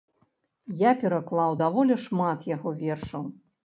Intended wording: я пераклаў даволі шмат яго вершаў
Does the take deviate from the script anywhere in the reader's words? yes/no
no